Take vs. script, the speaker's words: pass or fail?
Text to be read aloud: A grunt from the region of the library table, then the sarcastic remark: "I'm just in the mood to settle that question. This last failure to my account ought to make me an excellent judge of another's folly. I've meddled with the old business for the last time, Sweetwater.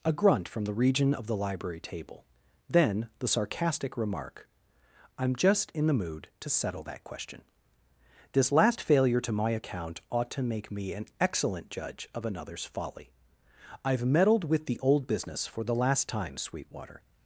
pass